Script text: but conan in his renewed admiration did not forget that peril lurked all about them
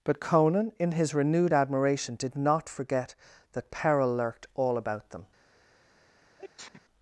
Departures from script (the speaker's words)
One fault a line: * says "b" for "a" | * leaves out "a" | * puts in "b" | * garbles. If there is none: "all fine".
all fine